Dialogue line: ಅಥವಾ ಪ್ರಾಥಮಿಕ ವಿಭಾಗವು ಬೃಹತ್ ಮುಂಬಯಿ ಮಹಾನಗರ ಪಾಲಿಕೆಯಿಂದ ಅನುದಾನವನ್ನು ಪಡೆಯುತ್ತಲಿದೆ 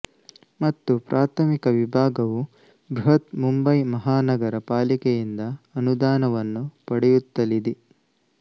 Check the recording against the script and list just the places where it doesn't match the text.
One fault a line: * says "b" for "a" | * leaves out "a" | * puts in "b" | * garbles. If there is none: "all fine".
* says "ಮತ್ತು" for "ಅಥವಾ"